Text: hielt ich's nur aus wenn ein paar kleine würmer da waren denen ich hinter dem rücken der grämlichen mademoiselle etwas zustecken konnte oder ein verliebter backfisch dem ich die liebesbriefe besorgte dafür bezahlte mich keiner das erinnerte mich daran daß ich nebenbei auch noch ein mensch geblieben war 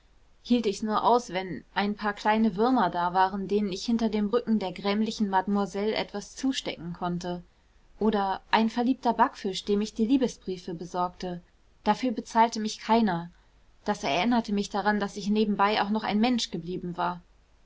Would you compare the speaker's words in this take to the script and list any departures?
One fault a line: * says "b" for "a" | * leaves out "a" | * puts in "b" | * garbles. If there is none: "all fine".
all fine